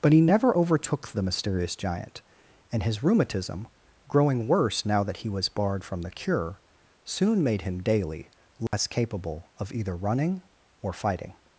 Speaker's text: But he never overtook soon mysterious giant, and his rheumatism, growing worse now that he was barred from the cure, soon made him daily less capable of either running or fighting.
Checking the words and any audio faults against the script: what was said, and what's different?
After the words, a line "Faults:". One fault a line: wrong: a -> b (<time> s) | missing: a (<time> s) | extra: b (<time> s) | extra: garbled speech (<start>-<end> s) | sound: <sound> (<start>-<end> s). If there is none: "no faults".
But he never overtook the mysterious giant, and his rheumatism, growing worse now that he was barred from the cure, soon made him daily less capable of either running or fighting.
Faults:
wrong: soon -> the (1.1 s)
sound: dropout (8.7-8.7 s)